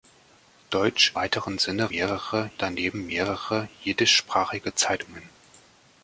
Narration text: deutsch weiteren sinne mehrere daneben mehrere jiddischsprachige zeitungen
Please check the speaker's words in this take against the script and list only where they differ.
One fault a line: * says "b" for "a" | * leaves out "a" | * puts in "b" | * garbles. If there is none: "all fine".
all fine